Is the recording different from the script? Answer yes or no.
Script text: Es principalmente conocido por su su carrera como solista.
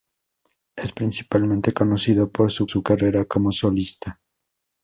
no